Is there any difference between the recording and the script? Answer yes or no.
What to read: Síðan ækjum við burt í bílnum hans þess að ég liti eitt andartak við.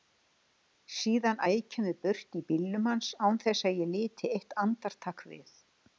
yes